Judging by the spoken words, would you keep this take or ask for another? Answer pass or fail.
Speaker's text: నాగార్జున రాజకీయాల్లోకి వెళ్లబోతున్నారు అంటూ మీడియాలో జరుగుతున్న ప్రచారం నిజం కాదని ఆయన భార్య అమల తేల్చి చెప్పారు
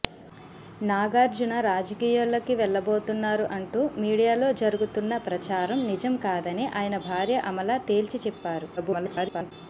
fail